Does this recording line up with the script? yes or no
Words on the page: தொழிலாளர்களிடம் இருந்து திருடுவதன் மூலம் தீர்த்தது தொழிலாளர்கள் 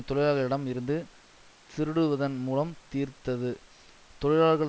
yes